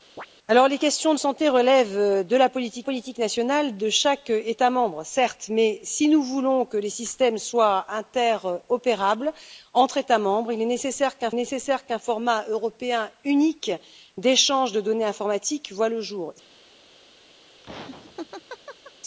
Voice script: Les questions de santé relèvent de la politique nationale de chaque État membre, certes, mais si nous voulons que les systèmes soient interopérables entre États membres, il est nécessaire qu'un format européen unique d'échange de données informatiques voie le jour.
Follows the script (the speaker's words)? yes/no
no